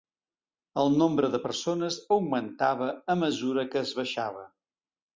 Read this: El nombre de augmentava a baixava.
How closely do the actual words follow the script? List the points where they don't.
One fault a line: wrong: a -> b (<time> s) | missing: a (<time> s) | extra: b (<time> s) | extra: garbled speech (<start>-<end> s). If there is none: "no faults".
extra: persones (1.4 s)
extra: mesura que es (3.3 s)